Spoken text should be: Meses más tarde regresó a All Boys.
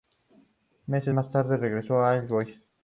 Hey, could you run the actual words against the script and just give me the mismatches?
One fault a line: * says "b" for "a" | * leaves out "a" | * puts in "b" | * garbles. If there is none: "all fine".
all fine